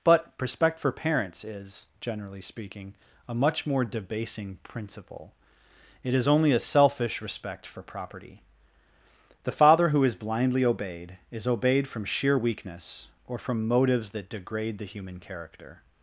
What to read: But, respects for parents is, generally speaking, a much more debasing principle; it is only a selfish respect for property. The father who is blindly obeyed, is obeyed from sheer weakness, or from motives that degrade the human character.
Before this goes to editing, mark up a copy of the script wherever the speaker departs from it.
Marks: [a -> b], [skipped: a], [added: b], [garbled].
But, [respects -> respect] for parents is, generally speaking, a much more debasing principle; it is only a selfish respect for property. The father who is blindly obeyed, is obeyed from sheer weakness, or from motives that degrade the human character.